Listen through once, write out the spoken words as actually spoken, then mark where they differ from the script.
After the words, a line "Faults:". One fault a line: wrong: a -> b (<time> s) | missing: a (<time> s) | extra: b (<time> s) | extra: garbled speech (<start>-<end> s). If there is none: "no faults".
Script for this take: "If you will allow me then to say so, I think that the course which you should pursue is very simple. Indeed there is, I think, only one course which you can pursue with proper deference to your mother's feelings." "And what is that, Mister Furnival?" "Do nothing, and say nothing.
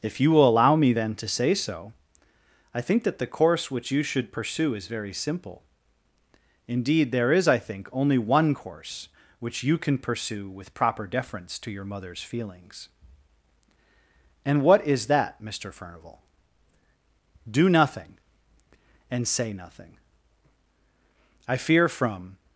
"If you will allow me then to say so, I think that the course which you should pursue is very simple. Indeed there is, I think, only one course which you can pursue with proper deference to your mother's feelings." "And what is that, Mister Furnival?" "Do nothing, and say nothing. I fear from
Faults:
extra: I fear from (21.5 s)